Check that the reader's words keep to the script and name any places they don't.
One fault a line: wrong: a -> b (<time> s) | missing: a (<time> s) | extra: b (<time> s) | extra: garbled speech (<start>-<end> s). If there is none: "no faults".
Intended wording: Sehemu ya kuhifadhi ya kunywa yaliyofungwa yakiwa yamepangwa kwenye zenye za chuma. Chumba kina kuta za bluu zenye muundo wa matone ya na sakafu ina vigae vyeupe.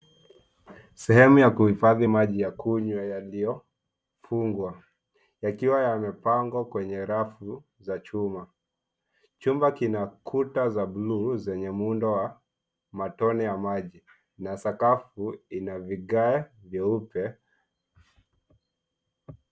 extra: maji (2.0 s)
wrong: zenye -> rafu (7.0 s)
extra: maji (13.6 s)